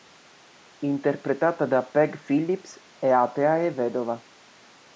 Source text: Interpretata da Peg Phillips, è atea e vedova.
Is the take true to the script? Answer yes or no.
yes